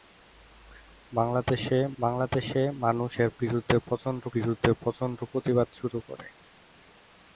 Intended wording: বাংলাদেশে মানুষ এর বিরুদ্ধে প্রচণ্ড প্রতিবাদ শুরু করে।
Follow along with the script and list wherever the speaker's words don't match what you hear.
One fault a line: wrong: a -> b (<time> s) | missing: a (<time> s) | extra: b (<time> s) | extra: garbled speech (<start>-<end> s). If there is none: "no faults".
extra: বাংলাদেশে (2.0 s)
extra: বিরুদ্ধে প্রচণ্ড (4.3 s)